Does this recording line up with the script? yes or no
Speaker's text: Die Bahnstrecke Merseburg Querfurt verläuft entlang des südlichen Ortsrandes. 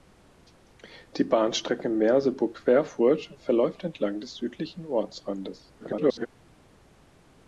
no